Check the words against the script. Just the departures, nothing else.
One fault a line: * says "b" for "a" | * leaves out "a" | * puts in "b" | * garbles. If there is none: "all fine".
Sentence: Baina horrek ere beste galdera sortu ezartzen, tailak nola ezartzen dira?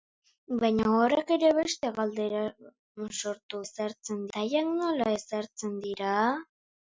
all fine